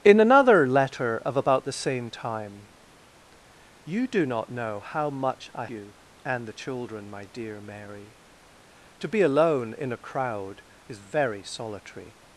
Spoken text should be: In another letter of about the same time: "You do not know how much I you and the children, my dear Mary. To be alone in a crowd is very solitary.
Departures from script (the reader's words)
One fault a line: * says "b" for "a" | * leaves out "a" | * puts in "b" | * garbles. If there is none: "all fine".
all fine